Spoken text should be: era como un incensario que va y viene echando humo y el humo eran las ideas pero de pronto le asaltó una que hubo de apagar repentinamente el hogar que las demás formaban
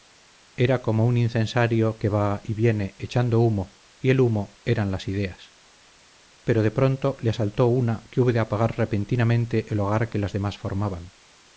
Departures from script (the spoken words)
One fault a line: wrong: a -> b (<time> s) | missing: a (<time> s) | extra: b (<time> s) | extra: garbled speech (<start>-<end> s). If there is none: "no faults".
no faults